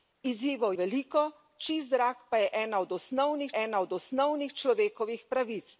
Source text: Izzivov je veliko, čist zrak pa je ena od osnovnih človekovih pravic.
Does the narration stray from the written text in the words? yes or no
yes